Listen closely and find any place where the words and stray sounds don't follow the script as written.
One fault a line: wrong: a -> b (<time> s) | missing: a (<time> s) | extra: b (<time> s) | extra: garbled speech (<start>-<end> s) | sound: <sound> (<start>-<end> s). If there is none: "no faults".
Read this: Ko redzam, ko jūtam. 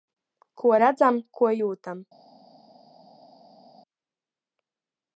no faults